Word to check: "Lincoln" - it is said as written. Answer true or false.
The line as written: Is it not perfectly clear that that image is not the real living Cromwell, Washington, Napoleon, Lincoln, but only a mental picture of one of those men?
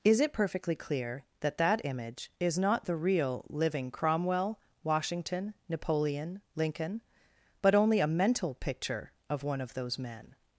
true